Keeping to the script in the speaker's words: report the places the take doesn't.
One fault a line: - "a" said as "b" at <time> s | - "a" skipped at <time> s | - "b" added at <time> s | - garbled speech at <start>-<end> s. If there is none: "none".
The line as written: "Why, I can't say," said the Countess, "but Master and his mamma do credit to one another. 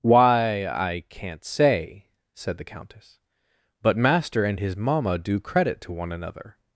none